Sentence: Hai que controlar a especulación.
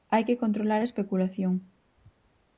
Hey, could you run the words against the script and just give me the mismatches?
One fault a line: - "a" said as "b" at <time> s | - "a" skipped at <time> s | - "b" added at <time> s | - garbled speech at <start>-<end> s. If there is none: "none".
none